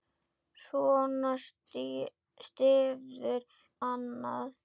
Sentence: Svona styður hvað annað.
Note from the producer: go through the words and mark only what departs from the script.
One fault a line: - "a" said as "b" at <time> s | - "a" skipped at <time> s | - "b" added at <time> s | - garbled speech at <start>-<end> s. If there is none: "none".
- "hvað" skipped at 3.5 s